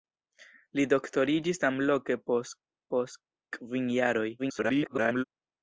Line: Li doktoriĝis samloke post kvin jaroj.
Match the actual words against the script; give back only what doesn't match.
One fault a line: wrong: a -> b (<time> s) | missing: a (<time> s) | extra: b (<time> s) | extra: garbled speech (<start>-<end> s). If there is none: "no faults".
extra: post (2.9 s)
extra: garbled speech (4.4-5.2 s)